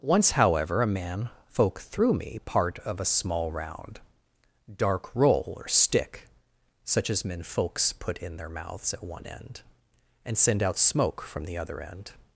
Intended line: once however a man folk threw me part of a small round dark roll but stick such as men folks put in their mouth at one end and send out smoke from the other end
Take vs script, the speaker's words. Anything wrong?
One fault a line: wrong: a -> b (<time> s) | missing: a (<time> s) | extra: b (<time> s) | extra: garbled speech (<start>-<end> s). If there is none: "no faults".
wrong: but -> or (5.5 s)
wrong: mouth -> mouths (8.5 s)